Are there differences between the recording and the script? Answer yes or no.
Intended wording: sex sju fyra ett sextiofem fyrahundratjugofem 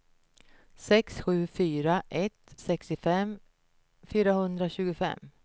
no